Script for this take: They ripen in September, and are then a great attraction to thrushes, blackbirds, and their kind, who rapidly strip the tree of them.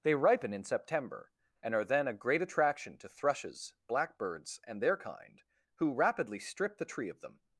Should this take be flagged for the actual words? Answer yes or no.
no